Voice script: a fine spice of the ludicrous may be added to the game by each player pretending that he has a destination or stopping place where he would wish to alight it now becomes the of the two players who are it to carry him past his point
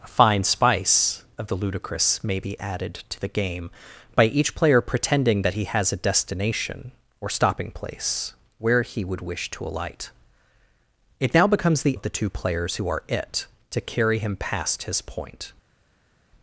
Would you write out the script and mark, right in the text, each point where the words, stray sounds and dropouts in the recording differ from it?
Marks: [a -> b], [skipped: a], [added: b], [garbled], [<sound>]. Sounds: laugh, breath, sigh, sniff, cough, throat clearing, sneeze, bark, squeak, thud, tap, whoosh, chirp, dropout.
a fine spice of the ludicrous may be added to the game by each player pretending that he has a destination or stopping place where he would wish to alight it now becomes the of the two players who are it to carry him past his point